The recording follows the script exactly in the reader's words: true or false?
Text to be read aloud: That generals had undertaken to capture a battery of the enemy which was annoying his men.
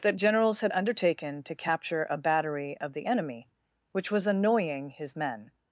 true